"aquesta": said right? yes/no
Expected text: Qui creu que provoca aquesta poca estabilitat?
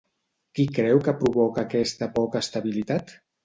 yes